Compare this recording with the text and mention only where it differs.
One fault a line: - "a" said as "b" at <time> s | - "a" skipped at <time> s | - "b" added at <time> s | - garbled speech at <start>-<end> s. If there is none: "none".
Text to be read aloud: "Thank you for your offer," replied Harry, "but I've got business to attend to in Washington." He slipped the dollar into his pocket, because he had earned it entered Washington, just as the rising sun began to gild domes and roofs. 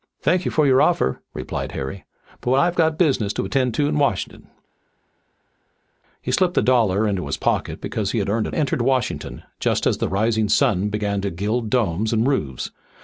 none